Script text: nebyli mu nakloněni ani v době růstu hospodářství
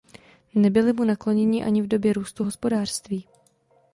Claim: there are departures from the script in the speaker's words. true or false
false